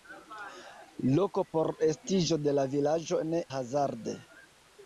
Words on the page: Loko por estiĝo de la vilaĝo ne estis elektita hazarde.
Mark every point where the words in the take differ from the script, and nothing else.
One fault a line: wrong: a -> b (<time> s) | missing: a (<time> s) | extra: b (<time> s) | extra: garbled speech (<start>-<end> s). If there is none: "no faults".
missing: estis elektita (3.4 s)